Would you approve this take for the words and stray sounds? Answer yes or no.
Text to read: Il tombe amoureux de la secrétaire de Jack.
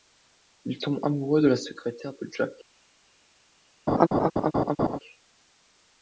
no